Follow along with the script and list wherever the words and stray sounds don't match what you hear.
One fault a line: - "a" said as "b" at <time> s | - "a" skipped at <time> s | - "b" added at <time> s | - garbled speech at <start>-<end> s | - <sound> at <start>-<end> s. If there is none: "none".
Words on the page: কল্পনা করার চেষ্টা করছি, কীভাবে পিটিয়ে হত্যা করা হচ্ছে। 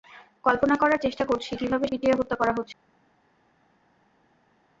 none